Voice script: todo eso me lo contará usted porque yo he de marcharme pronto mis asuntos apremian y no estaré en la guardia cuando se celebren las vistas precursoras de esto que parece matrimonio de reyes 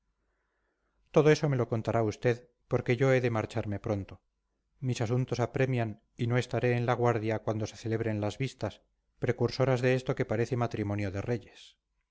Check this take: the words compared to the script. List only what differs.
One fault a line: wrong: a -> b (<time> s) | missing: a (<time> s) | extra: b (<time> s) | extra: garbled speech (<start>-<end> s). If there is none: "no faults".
no faults